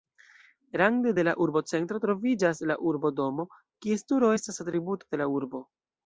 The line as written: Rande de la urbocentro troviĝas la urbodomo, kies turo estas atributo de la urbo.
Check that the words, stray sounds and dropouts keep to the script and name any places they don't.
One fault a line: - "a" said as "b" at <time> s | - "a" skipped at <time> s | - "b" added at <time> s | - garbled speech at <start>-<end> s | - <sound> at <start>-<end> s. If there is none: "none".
none